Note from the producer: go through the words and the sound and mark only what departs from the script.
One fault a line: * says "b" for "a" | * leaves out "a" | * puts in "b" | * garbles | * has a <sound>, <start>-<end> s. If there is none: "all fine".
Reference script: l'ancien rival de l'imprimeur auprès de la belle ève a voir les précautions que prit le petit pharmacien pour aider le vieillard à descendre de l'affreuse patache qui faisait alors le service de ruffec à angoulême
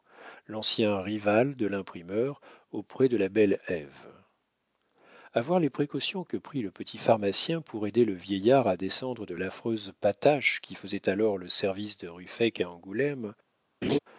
* has a laugh, 13.8-14.0 s